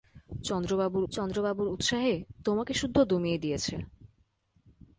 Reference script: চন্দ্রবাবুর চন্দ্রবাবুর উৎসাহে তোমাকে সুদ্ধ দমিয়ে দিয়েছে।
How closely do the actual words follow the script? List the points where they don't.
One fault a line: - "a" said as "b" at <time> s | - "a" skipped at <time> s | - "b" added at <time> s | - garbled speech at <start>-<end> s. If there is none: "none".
none